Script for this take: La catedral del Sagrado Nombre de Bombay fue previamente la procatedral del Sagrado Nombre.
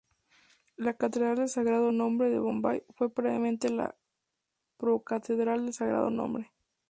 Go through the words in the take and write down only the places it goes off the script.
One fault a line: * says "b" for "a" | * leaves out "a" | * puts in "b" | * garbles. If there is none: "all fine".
all fine